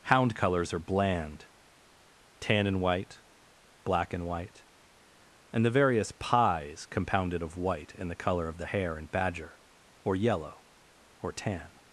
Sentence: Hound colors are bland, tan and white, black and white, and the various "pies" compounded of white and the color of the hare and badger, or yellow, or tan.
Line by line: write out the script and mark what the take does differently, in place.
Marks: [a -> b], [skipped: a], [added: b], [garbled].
Hound colors are bland, tan and white, black and white, and the various "pies" compounded of white and the color of the hare and badger, or yellow, or tan.